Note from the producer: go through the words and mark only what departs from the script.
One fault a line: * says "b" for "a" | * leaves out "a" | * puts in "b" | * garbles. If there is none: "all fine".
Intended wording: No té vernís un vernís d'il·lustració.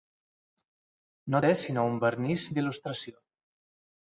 * says "sinó" for "vernís"